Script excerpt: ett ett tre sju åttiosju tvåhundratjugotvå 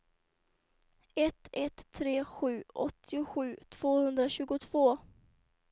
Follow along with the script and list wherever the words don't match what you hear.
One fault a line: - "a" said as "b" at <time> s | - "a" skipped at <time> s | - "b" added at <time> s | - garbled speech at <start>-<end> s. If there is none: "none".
none